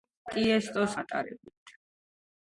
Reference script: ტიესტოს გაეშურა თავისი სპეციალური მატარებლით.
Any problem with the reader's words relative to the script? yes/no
yes